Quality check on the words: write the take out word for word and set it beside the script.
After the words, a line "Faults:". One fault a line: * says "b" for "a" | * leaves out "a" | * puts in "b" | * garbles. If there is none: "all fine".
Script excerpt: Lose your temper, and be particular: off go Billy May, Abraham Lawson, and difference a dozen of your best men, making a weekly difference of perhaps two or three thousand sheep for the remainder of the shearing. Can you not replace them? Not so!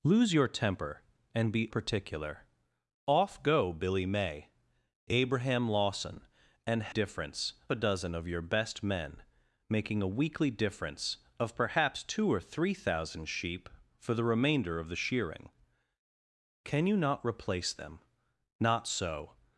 Lose your temper, and be particular: off go Billy May, Abraham Lawson, and difference a dozen of your best men, making a weekly difference of perhaps two or three thousand sheep for the remainder of the shearing. Can you not replace them? Not so!
Faults:
all fine